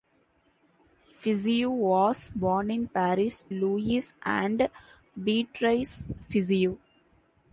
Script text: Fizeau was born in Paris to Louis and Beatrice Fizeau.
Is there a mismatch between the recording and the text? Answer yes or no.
yes